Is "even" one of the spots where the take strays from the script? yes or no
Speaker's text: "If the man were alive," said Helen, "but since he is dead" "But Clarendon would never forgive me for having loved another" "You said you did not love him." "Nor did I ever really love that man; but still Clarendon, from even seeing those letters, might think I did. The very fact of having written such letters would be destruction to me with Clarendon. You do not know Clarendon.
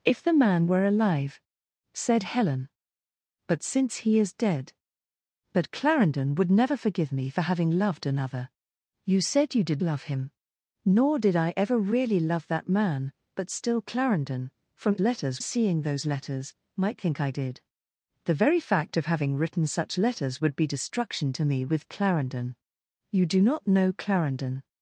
yes